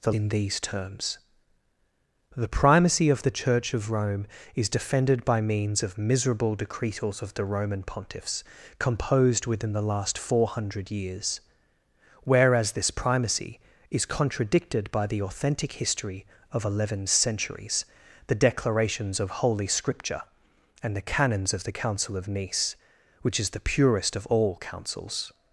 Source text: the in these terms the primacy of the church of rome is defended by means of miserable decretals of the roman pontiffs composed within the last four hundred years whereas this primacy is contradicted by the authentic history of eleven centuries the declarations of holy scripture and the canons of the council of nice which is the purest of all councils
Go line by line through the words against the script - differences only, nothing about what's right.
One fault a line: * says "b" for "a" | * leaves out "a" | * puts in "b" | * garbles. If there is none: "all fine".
all fine